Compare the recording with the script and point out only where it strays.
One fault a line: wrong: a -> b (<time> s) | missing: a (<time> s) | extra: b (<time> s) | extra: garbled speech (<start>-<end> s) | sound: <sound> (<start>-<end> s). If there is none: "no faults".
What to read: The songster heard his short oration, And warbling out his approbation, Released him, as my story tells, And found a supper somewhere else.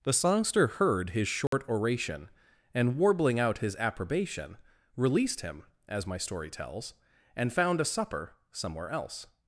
sound: dropout (1.5-1.5 s)